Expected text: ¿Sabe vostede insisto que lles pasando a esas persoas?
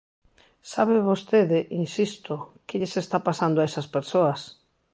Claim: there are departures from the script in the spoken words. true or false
true